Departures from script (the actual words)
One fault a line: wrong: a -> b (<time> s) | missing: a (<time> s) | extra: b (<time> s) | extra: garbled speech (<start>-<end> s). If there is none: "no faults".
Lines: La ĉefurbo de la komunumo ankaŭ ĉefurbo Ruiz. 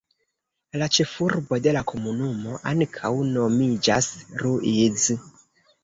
wrong: ĉefurbo -> nomiĝas (3.3 s)